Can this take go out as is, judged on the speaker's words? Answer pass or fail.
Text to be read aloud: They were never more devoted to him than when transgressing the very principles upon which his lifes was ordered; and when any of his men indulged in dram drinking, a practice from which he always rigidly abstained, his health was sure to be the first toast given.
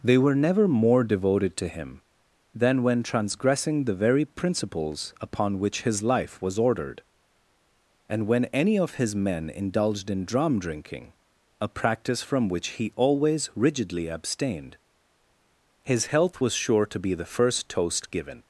fail